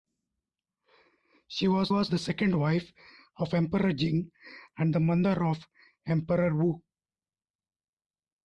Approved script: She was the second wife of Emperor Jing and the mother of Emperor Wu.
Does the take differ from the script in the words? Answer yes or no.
yes